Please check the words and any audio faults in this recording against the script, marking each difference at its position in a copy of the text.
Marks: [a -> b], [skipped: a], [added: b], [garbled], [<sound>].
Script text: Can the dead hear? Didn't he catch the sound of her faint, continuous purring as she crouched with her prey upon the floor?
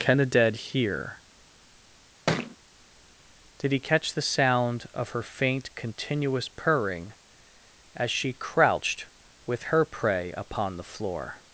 Can the dead hear? [thud] [Didn't -> Did] he catch the sound of her faint, continuous purring as she crouched with her prey upon the floor?